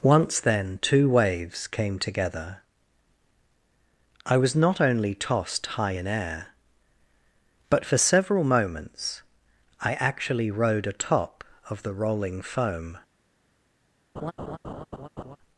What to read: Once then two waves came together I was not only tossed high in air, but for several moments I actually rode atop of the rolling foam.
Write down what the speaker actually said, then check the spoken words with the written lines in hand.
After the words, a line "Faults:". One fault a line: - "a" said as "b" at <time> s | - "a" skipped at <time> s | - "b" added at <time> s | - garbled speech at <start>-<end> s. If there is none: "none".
Once then two waves came together I was not only tossed high in air, but for several moments I actually rode atop of the rolling foam.
Faults:
none